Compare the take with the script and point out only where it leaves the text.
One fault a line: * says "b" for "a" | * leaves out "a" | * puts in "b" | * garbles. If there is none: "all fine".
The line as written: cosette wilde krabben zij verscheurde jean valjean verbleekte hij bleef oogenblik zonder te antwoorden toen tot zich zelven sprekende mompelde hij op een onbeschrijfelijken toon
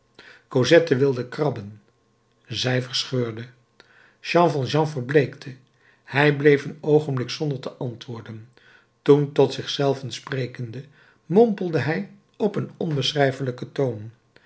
* puts in "een"